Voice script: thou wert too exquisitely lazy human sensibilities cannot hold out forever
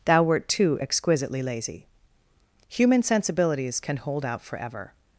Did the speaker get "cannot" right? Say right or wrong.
wrong